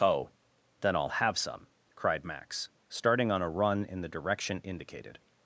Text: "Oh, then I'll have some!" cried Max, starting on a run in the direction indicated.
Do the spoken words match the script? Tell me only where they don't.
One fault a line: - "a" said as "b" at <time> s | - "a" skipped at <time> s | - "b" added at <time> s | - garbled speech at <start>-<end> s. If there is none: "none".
none